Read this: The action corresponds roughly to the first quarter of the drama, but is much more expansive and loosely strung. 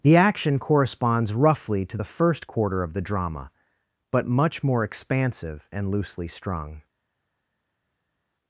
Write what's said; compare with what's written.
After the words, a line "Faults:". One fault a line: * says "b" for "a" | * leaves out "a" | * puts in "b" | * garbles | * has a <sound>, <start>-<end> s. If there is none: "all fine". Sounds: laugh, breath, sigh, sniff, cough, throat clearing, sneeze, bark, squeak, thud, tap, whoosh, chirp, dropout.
The action corresponds roughly to the first quarter of the drama, but much more expansive and loosely strung.
Faults:
* leaves out "is"